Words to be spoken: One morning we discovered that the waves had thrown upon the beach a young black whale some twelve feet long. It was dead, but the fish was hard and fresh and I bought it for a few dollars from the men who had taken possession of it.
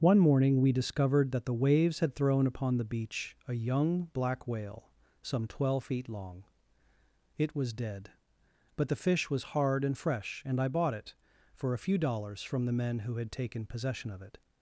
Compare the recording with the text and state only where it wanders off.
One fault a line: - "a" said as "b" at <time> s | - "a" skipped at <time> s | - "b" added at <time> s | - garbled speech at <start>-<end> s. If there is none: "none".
none